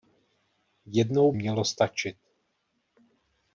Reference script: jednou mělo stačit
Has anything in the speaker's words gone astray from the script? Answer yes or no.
no